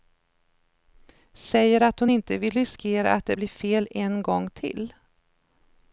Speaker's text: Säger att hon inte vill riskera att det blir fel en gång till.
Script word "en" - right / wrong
right